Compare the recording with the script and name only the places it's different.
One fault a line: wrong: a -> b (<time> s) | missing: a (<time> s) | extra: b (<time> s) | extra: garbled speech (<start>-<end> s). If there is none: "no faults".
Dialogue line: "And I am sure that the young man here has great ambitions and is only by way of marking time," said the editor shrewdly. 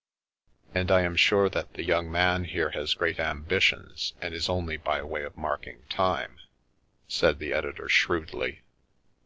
no faults